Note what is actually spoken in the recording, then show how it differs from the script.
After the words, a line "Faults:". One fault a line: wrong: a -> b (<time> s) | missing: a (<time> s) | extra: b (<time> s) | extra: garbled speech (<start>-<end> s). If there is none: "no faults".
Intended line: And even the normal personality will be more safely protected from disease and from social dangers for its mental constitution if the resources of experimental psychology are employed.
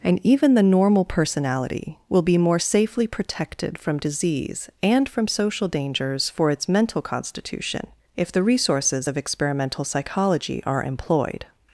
And even the normal personality will be more safely protected from disease and from social dangers for its mental constitution if the resources of experimental psychology are employed.
Faults:
no faults